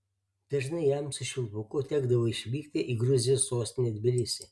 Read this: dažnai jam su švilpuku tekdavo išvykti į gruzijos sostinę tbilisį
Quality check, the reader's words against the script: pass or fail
pass